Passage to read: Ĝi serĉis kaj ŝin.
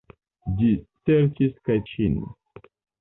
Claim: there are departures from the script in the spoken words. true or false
false